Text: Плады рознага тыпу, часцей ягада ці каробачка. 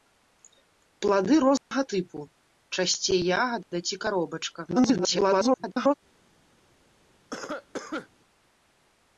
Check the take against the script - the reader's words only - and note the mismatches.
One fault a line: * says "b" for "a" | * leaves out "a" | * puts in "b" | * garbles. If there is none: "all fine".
* garbles